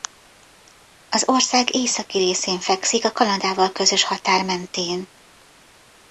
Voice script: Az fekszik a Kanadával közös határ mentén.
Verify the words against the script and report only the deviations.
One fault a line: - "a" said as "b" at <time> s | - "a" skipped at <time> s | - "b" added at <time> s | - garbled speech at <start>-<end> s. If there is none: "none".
- "ország északi részén" added at 1.3 s